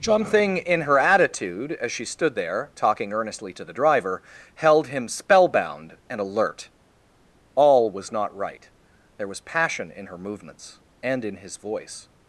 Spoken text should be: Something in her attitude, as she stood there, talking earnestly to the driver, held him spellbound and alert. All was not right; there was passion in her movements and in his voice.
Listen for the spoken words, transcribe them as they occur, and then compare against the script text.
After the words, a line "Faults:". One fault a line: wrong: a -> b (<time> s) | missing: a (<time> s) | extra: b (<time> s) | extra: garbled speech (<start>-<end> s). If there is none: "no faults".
Something in her attitude, as she stood there, talking earnestly to the driver, held him spellbound and alert. All was not right; there was passion in her movements and in his voice.
Faults:
no faults